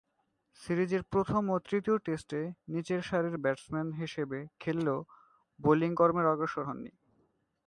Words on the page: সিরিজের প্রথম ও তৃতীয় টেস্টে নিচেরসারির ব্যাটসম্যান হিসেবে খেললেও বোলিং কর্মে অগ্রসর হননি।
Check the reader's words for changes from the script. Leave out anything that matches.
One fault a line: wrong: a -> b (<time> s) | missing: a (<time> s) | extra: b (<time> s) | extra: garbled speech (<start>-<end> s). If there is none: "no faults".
no faults